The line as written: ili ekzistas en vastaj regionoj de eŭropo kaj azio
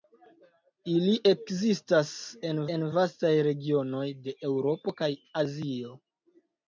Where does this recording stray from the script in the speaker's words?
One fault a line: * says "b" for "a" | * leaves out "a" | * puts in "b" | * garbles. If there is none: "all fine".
* puts in "en"